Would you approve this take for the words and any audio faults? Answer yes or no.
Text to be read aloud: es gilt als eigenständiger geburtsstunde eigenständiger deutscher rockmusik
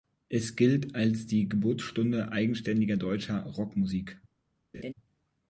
no